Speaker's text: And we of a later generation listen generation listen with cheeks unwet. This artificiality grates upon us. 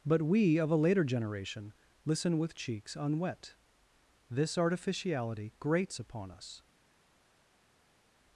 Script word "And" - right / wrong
wrong